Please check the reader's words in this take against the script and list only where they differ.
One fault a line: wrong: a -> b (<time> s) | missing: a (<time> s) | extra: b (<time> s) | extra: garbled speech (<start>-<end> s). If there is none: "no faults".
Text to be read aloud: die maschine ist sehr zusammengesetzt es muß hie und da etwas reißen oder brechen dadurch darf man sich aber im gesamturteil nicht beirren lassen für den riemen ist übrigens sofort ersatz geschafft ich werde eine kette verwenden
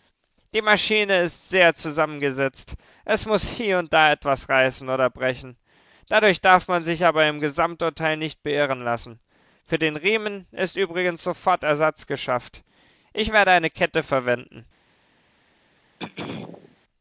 no faults